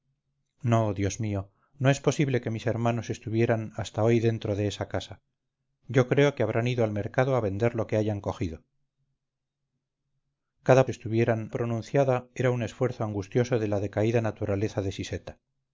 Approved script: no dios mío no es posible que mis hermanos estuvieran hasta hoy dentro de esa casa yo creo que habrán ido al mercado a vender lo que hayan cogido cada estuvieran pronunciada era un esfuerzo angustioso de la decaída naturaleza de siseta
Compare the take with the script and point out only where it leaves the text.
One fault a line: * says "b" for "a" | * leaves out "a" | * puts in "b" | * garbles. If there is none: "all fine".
all fine